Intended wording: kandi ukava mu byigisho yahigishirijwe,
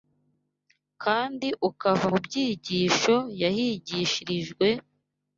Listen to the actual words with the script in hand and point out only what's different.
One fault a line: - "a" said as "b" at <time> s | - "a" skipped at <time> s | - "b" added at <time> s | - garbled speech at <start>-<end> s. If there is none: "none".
none